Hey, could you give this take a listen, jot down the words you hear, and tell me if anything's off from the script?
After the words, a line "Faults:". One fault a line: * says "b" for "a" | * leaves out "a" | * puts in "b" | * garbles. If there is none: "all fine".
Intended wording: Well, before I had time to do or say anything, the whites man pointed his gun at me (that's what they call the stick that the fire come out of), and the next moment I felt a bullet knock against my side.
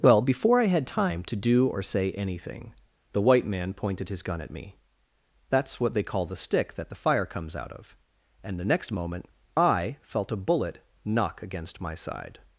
Well, before I had time to do or say anything, the white man pointed his gun at me (that's what they call the stick that the fire comes out of), and the next moment I felt a bullet knock against my side.
Faults:
* says "white" for "whites"
* says "comes" for "come"